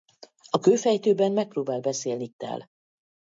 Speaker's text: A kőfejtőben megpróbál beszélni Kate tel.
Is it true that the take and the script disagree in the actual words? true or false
true